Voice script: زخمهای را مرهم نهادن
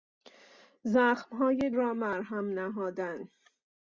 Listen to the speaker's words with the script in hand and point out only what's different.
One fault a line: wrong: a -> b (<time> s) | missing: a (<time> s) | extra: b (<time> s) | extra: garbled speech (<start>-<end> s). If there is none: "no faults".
no faults